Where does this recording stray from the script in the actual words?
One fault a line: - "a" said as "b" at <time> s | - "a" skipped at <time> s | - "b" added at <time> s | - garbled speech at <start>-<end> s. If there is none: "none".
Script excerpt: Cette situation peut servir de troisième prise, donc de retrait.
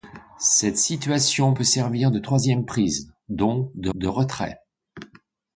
- "de" added at 3.9 s